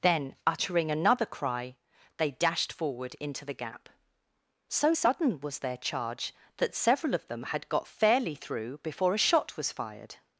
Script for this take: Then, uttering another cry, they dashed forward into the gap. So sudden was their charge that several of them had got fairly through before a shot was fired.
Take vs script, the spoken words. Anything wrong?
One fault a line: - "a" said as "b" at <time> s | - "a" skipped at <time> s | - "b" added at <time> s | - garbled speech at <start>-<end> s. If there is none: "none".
none